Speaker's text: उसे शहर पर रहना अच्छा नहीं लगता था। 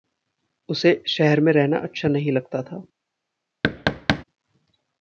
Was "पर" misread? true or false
true